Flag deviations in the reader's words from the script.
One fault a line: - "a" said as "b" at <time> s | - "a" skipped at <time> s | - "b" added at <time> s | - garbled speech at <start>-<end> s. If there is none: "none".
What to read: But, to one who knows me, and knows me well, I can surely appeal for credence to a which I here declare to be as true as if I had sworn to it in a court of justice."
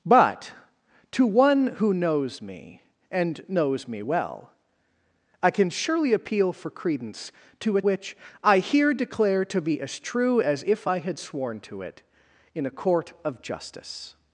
none